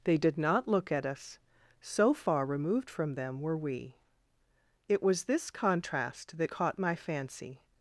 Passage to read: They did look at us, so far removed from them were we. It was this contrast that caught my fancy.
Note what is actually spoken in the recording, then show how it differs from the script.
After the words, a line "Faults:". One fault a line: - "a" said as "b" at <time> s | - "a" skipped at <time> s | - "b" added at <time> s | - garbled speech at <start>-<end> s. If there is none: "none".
They did not look at us, so far removed from them were we. It was this contrast that caught my fancy.
Faults:
- "not" added at 0.4 s